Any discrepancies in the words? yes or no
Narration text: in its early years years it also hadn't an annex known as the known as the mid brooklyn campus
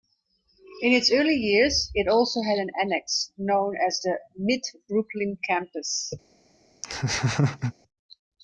yes